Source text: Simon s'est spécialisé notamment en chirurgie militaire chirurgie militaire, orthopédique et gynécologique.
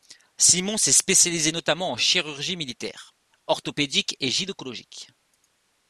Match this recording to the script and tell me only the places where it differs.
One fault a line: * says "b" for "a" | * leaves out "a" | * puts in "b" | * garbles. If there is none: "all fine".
* leaves out "chirurgie militaire"